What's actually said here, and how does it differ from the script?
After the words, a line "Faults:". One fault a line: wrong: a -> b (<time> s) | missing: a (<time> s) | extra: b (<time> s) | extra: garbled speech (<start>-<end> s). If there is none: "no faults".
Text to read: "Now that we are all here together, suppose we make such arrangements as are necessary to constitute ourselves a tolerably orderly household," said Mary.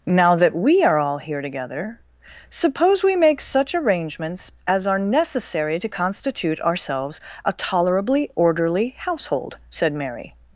"Now that we are all here together, suppose we make such arrangements as are necessary to constitute ourselves a tolerably orderly household," said Mary.
Faults:
no faults